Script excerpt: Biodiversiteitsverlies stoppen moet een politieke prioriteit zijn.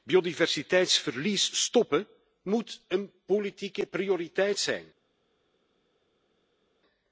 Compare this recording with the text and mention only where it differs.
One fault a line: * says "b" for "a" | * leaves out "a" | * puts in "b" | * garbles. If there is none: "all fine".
all fine